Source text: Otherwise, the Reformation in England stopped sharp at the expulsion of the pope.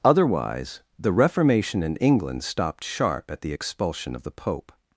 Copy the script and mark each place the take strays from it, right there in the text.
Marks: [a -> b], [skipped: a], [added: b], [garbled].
Otherwise, the Reformation in England stopped sharp at the expulsion of the pope.